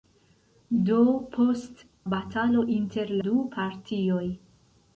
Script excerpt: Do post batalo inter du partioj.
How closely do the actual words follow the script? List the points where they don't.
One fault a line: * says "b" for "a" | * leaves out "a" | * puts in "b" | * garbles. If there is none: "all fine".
all fine